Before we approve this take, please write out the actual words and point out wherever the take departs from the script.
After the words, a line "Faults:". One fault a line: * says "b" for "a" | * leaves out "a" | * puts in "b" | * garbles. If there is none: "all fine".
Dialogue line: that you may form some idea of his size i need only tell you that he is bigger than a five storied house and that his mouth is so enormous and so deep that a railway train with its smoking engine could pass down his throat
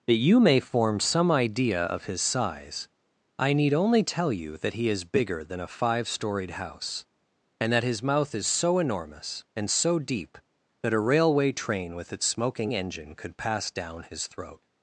that you may form some idea of his size i need only tell you that he is bigger than a five storied house and that his mouth is so enormous and so deep that a railway train with its smoking engine could pass down his throat
Faults:
all fine